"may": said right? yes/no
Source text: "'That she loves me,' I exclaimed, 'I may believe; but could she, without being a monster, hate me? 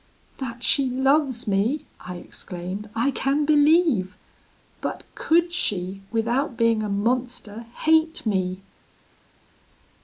no